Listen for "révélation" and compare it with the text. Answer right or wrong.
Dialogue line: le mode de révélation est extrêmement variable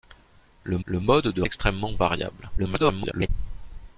wrong